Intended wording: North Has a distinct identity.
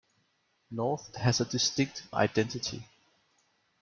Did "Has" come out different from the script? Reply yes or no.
no